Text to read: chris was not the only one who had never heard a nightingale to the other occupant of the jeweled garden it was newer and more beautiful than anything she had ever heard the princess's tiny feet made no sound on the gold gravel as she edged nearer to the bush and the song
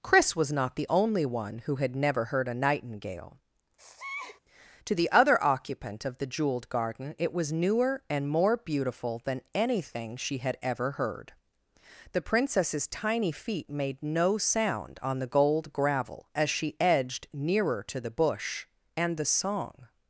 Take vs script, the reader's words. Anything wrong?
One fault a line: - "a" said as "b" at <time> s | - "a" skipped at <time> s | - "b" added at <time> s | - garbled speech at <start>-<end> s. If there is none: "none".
none